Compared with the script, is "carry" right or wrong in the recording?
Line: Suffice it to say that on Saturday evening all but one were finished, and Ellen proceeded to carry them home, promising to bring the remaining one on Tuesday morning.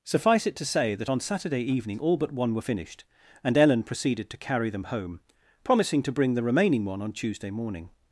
right